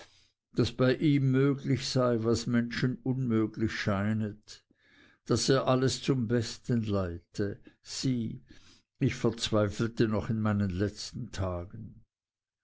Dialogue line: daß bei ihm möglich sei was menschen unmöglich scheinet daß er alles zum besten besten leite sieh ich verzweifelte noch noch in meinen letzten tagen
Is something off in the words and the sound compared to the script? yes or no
yes